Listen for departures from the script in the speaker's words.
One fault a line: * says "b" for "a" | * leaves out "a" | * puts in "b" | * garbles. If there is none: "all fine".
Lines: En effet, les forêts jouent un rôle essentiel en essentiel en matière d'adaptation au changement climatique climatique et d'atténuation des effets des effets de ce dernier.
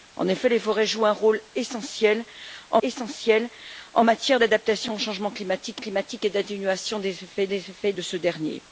all fine